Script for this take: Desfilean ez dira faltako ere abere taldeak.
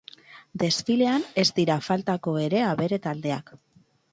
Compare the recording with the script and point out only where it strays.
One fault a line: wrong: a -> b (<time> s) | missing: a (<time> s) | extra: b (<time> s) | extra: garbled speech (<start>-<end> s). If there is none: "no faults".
no faults